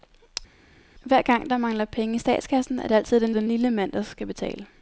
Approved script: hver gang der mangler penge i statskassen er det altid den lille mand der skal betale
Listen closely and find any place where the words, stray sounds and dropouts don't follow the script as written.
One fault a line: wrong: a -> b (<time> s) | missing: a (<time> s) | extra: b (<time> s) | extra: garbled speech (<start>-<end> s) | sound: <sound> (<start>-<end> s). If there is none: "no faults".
extra: den (3.3 s)